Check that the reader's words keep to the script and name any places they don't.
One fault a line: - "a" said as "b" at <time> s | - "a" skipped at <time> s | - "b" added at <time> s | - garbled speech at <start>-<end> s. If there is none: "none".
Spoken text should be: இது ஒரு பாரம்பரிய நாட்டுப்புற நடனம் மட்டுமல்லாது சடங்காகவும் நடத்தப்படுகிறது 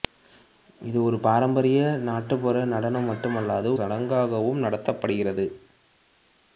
none